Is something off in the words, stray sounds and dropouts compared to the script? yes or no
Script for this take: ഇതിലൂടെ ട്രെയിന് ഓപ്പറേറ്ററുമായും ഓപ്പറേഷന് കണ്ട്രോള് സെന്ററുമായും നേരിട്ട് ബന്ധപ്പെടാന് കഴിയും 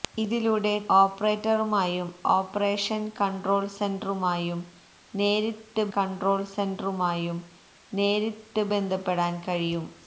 yes